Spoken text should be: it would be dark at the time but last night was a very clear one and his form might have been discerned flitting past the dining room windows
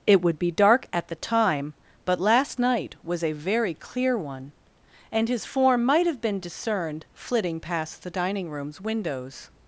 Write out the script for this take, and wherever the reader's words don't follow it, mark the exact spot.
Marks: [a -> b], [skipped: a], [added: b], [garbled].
it would be dark at the time but last night was a very clear one and his form might have been discerned flitting past the dining [room -> rooms] windows